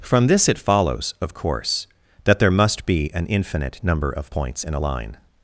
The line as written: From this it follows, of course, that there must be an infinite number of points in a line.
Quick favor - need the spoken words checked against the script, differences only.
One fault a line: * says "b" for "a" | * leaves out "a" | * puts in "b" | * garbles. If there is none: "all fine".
all fine